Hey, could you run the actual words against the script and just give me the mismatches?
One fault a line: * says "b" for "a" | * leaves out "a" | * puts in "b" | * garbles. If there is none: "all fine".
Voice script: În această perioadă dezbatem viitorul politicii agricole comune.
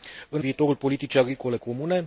* leaves out "această perioadă dezbatem"